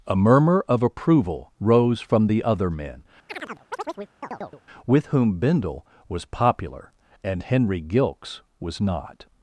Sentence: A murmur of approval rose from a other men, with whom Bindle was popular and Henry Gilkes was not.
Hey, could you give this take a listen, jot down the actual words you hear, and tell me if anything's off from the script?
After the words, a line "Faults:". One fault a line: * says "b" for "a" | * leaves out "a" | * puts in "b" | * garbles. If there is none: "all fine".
A murmur of approval rose from the other men, with whom Bindle was popular and Henry Gilkes was not.
Faults:
* says "the" for "a"